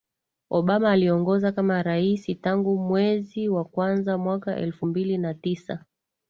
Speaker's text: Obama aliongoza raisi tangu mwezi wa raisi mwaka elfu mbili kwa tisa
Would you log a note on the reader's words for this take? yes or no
yes